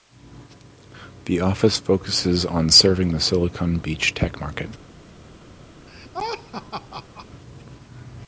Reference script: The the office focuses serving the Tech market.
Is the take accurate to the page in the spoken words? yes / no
no